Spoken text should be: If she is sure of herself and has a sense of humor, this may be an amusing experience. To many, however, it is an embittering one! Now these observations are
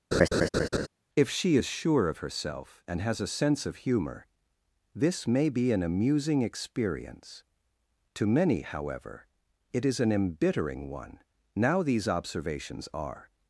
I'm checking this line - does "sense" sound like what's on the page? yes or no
yes